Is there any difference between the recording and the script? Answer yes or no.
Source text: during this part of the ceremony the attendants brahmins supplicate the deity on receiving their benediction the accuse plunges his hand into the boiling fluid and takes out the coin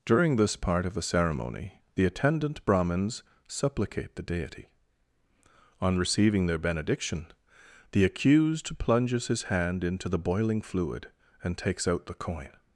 yes